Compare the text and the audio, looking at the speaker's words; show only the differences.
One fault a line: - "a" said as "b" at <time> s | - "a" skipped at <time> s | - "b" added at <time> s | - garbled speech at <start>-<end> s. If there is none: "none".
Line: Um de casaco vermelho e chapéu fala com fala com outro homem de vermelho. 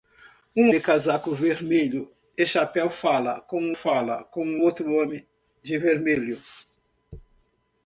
none